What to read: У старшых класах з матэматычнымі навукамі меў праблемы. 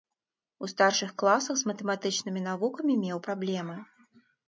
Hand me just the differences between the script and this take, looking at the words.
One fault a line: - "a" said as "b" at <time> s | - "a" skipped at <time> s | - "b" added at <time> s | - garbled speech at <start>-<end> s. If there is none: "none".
none